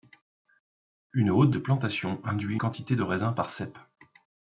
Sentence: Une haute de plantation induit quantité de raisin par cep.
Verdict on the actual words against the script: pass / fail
pass